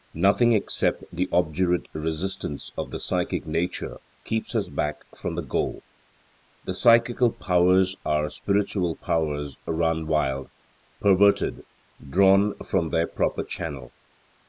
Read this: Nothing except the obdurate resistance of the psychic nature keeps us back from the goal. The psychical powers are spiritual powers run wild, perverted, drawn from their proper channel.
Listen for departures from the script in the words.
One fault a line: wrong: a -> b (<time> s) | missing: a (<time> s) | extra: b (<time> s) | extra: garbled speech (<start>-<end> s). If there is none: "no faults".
no faults